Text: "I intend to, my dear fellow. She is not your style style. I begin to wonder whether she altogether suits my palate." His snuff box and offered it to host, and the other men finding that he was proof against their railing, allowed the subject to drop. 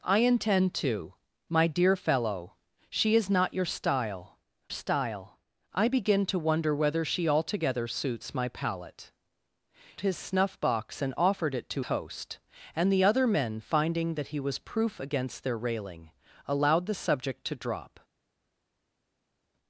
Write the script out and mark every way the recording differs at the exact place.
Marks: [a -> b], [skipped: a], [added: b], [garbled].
"I intend to, my dear fellow. She is not your style style. I begin to wonder whether she altogether suits my palate." His snuff box and offered it to host, and the other men finding that he was proof against their railing, allowed the subject to drop.